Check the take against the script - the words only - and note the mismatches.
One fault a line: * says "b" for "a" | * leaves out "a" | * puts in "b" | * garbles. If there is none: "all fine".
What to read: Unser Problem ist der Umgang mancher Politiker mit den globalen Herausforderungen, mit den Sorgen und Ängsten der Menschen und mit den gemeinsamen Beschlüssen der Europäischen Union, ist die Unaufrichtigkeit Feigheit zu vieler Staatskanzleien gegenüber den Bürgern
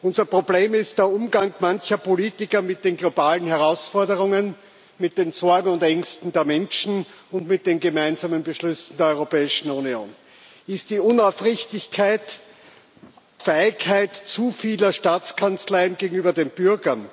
all fine